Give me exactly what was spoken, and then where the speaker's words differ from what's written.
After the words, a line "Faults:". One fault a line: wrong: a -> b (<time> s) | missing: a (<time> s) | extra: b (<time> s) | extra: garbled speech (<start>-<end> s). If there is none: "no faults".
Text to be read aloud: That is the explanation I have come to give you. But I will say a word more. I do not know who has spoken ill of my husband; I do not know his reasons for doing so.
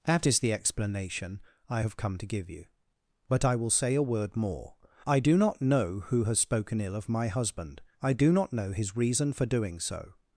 That is the explanation I have come to give you. But I will say a word more. I do not know who has spoken ill of my husband; I do not know his reason for doing so.
Faults:
wrong: reasons -> reason (9.0 s)